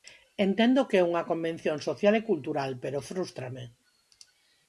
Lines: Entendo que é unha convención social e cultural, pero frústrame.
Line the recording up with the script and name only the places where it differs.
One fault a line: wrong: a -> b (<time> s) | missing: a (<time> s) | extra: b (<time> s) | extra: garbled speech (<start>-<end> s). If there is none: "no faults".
no faults